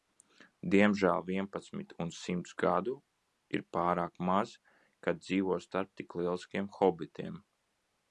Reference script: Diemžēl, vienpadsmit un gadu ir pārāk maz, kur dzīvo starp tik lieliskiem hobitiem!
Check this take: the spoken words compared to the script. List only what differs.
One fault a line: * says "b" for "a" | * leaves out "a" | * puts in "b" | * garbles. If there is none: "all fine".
* puts in "simts"
* says "kad" for "kur"